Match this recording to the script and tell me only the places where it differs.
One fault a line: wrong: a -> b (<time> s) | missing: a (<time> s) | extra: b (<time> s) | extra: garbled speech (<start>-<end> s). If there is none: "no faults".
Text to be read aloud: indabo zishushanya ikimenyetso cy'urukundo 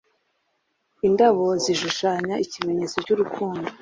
no faults